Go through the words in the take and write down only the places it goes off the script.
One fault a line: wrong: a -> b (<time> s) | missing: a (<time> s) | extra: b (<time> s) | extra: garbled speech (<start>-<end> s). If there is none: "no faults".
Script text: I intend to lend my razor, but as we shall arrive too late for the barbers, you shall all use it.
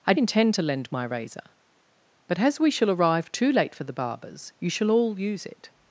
no faults